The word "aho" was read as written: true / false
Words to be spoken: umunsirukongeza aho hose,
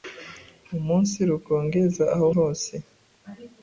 true